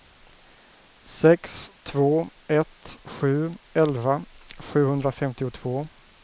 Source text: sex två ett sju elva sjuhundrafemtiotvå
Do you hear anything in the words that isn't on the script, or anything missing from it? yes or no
no